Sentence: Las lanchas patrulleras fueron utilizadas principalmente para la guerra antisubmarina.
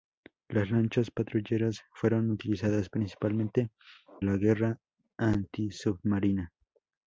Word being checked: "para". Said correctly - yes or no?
no